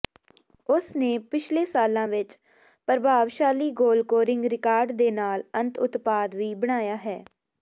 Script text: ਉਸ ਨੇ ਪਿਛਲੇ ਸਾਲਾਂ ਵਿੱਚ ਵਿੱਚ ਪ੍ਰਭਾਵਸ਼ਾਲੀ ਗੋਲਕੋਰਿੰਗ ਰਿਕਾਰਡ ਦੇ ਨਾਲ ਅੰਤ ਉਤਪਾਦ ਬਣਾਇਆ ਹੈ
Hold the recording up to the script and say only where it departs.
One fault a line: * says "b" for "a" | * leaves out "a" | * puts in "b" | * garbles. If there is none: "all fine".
* leaves out "ਵਿੱਚ"
* puts in "ਵੀ"